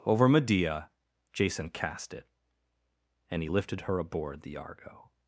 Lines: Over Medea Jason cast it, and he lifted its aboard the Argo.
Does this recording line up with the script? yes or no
no